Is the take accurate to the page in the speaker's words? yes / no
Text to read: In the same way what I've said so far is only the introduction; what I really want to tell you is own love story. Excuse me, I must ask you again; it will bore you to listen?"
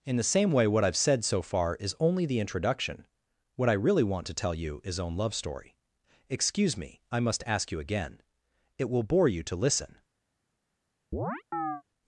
yes